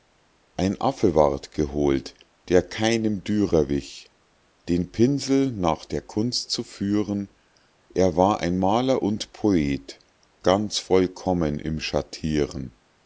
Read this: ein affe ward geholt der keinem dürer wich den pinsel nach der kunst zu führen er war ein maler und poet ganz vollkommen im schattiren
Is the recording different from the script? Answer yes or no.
no